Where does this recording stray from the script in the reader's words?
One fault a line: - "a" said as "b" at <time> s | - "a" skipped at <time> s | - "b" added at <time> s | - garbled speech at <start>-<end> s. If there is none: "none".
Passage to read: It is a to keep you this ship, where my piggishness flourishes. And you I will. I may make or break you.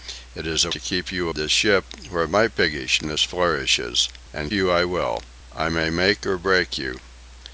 none